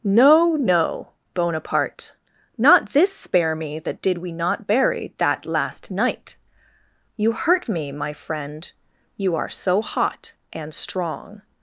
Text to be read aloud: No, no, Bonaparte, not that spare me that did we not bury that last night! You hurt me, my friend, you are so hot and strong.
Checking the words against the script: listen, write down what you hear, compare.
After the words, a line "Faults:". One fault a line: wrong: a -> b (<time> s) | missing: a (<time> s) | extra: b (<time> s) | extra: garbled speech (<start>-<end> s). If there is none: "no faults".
No, no, Bonaparte, not this spare me that did we not bury that last night! You hurt me, my friend, you are so hot and strong.
Faults:
wrong: that -> this (2.9 s)